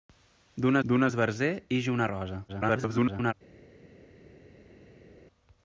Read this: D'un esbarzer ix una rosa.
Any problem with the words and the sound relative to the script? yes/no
yes